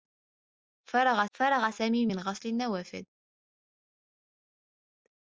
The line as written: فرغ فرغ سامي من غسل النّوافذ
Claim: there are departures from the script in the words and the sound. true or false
false